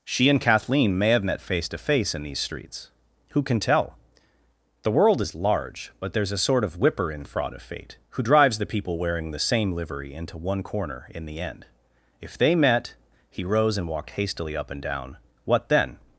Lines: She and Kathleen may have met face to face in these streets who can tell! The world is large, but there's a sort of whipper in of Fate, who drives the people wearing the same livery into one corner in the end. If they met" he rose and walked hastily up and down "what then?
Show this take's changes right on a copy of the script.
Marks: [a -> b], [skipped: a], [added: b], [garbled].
She and Kathleen may have met face to face in these streets who can tell! The world is large, but there's a sort of whipper in [added: fraud] of Fate, who drives the people wearing the same livery into one corner in the end. If they met" he rose and walked hastily up and down "what then?